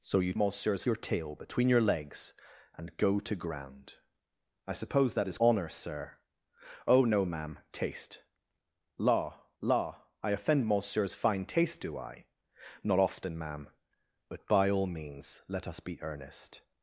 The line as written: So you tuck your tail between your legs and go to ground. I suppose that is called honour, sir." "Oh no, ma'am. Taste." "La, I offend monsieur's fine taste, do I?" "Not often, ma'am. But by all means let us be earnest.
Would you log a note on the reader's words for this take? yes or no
yes